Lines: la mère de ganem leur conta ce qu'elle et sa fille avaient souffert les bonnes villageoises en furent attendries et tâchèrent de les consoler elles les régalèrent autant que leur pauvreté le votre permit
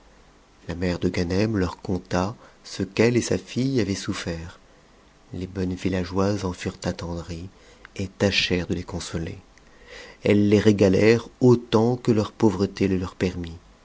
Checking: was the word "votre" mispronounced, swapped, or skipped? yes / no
yes